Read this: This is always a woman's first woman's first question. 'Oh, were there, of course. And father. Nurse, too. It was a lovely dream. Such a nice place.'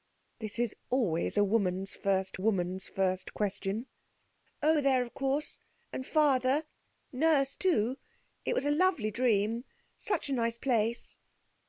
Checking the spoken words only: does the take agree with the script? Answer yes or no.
yes